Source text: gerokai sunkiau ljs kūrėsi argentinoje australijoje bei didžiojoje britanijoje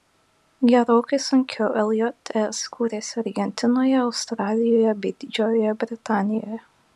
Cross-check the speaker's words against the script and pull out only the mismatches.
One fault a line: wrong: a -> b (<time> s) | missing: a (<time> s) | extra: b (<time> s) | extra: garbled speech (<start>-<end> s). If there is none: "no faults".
no faults